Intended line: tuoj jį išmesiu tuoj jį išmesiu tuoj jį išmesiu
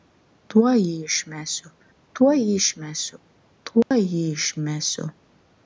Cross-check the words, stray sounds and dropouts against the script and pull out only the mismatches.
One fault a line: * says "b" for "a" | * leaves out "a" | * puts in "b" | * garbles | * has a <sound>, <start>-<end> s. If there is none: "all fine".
* has a dropout, 3.8-3.9 s